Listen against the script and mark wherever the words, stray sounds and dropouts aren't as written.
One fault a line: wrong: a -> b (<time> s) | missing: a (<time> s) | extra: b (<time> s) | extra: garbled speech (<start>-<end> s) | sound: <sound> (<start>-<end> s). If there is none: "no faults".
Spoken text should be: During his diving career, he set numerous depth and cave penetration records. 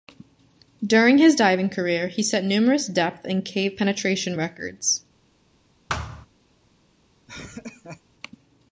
sound: thud (5.9-6.3 s)
sound: laugh (7.3-8.0 s)